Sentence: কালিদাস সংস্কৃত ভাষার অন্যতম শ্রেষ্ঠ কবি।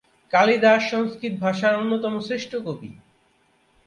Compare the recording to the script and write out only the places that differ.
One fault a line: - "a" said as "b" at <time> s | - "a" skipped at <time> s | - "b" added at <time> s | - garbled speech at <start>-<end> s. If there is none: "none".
none